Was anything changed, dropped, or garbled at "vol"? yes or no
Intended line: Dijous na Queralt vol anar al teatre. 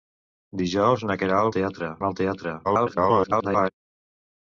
yes